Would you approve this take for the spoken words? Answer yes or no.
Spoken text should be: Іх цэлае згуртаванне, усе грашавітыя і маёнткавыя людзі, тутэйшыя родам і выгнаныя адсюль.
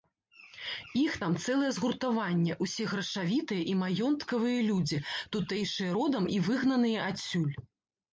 no